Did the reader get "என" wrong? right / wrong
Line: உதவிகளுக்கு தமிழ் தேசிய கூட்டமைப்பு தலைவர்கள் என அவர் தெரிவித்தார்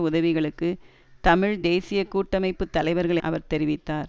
wrong